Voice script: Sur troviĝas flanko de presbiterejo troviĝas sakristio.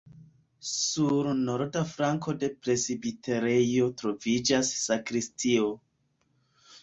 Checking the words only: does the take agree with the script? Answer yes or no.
no